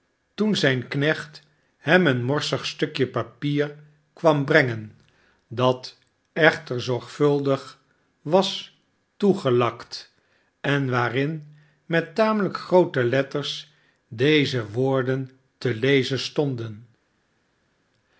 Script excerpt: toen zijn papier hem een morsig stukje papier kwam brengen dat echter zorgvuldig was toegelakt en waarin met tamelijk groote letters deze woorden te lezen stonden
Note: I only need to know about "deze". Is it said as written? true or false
true